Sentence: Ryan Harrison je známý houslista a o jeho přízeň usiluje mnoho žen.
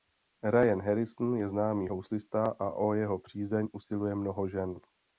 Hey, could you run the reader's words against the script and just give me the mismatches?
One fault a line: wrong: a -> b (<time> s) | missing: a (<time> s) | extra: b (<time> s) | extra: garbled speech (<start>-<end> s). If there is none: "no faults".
no faults